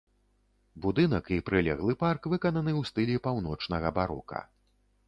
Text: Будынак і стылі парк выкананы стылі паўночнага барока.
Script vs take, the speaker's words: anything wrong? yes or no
yes